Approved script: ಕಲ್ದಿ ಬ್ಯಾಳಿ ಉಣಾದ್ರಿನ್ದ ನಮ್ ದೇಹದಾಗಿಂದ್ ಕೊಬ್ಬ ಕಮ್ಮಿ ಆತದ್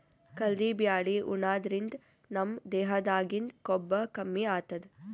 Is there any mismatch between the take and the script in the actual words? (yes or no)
no